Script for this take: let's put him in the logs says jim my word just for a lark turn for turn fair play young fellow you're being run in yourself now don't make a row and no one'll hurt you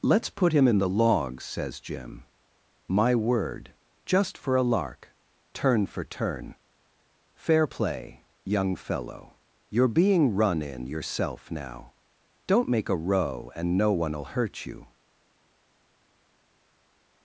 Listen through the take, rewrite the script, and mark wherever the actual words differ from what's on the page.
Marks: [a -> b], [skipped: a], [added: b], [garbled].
let's put him in the logs says jim my word just for a lark turn for turn fair play young fellow you're being run in yourself now don't make a row and no one'll hurt you